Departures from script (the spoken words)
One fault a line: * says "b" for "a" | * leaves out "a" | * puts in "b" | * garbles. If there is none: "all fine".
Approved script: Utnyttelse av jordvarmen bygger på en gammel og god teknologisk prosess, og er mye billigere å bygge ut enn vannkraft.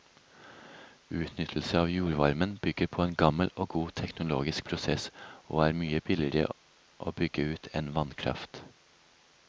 all fine